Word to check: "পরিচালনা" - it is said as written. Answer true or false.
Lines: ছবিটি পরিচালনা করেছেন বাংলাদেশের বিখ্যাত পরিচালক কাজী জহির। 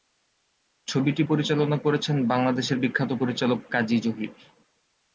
true